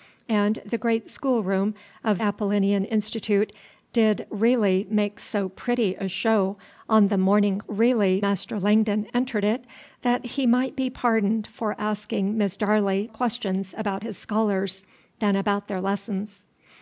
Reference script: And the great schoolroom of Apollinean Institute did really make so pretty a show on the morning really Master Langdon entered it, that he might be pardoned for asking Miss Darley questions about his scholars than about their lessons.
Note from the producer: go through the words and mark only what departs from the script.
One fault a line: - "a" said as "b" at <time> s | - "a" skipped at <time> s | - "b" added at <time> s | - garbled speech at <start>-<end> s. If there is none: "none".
none